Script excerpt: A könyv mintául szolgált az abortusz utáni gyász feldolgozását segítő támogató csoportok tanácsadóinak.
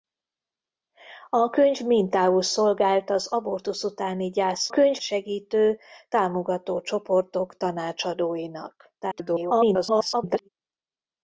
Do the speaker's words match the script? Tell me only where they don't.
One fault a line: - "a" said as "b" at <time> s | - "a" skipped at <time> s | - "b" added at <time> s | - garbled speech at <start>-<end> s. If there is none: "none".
- "feldolgozását" said as "könyv" at 4.7 s
- garbled speech at 9.0-10.5 s